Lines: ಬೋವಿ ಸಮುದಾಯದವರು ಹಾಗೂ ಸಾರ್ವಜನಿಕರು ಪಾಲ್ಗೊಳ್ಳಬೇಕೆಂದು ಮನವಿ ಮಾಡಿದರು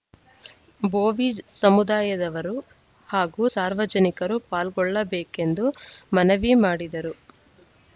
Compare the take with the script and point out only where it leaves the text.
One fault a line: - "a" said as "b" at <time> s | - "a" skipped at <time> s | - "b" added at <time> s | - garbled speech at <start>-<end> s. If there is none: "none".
none